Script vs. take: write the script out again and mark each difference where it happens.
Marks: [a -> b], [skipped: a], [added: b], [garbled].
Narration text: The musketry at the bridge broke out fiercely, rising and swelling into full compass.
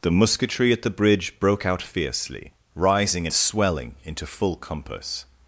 The musketry at the bridge broke out fiercely, rising [skipped: and] swelling into full compass.